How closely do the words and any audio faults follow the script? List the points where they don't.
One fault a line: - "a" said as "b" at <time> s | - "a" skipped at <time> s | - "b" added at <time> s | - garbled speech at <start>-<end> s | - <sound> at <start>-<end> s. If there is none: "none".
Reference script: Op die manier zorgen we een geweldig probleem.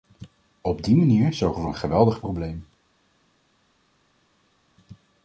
none